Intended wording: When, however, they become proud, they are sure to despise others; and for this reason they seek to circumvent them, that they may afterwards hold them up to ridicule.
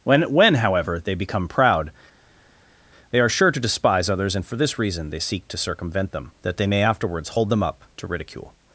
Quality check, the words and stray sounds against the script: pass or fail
fail